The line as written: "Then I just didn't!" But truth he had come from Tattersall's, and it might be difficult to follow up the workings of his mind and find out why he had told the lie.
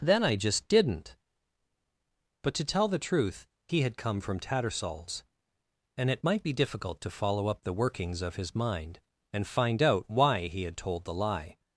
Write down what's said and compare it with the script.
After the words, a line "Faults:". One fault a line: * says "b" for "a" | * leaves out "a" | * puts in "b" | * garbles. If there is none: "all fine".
"Then I just didn't!" But to tell the truth he had come from Tattersall's, and it might be difficult to follow up the workings of his mind and find out why he had told the lie.
Faults:
* puts in "to tell the"